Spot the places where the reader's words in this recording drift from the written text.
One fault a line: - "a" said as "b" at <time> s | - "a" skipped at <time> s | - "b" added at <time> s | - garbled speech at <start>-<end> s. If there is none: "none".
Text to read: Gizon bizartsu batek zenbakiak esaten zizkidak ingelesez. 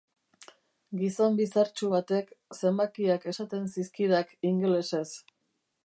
none